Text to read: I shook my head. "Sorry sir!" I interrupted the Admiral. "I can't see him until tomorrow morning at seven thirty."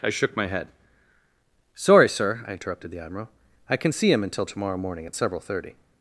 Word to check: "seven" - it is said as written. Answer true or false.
false